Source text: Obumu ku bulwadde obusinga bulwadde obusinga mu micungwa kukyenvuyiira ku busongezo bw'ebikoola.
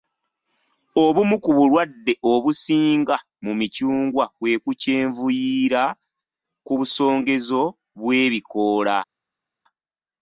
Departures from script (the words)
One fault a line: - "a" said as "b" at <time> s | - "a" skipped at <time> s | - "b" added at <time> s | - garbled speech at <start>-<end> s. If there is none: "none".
- "bulwadde obusinga" skipped at 3.1 s
- "kwe" added at 4.3 s